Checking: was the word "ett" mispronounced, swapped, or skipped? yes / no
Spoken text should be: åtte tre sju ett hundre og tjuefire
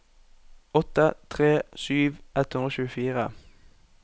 no